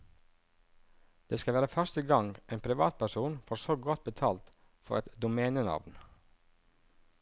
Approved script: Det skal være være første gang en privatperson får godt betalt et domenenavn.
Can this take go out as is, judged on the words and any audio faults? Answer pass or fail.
fail